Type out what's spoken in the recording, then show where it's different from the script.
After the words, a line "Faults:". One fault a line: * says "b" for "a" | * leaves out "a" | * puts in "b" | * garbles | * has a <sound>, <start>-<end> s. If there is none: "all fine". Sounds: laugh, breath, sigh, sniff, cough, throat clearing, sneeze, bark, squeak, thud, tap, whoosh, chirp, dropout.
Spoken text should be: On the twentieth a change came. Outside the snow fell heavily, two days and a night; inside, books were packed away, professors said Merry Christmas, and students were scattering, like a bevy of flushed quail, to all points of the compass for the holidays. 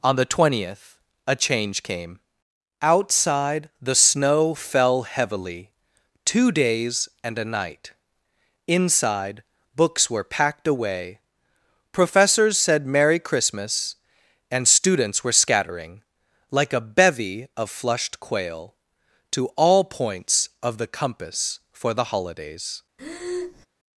On the twentieth a change came. Outside the snow fell heavily, two days and a night; inside, books were packed away, professors said Merry Christmas, and students were scattering, like a bevy of flushed quail, to all points of the compass for the holidays.
Faults:
* has a breath, 23.0-23.7 s